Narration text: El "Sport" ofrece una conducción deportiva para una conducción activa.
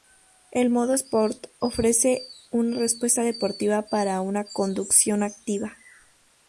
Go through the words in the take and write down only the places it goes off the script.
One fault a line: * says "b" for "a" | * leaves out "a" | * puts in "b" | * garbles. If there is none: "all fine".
* puts in "modo"
* says "respuesta" for "conducción"